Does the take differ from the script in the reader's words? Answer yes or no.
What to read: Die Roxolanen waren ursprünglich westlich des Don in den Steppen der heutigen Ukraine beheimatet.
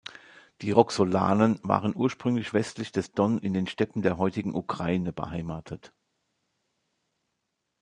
no